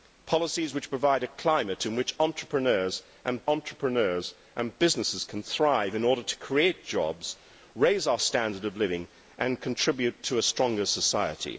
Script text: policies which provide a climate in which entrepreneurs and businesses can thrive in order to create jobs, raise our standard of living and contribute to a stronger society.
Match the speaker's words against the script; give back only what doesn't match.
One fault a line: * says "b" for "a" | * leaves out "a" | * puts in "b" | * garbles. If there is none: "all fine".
* puts in "entrepreneurs and"